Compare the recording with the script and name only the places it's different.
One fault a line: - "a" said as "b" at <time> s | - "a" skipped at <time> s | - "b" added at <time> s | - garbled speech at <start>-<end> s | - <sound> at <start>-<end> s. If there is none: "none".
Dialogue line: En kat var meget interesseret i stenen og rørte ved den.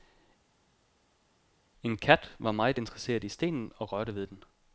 none